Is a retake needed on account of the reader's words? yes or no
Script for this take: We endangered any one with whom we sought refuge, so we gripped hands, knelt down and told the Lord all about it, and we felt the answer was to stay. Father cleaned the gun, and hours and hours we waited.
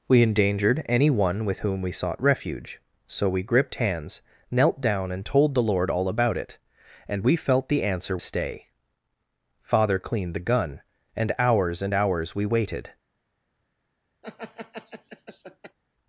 yes